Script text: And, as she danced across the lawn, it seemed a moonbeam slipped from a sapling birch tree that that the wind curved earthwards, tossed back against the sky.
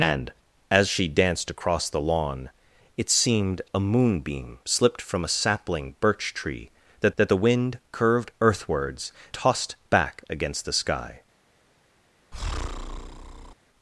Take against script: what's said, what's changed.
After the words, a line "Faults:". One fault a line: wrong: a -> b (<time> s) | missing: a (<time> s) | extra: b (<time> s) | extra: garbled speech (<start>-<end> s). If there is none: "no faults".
And, as she danced across the lawn, it seemed a moonbeam slipped from a sapling birch tree that that the wind curved earthwards, tossed back against the sky.
Faults:
no faults